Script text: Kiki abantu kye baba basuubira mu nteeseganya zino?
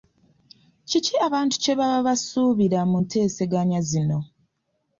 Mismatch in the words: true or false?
false